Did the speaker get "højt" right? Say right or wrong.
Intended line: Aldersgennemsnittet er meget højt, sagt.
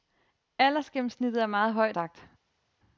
right